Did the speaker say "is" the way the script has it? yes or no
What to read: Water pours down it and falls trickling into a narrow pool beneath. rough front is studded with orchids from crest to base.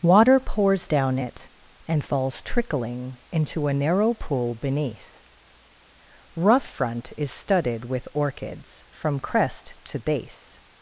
yes